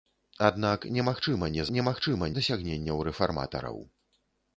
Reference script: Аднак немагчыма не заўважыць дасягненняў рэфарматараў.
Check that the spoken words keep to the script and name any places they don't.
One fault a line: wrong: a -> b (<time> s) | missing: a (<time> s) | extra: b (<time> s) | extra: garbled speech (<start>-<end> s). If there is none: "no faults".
wrong: заўважыць -> немагчыма (1.7 s)